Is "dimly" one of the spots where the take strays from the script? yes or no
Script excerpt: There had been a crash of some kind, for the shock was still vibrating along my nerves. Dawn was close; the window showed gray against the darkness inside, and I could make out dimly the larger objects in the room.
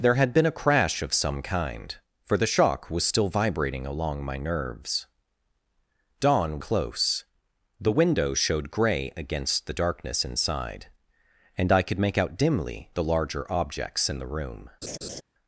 no